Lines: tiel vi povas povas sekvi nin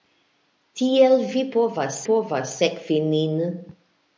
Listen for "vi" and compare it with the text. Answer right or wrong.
right